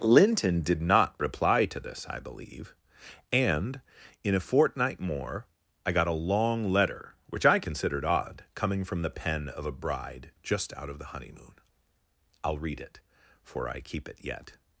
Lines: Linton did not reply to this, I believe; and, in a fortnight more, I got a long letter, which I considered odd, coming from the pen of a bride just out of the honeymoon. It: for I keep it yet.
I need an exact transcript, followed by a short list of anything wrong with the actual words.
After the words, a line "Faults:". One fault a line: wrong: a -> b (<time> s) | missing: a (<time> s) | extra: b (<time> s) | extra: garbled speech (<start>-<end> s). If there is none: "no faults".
Linton did not reply to this, I believe; and, in a fortnight more, I got a long letter, which I considered odd, coming from the pen of a bride just out of the honeymoon. I'll read it: for I keep it yet.
Faults:
extra: I'll read (12.4 s)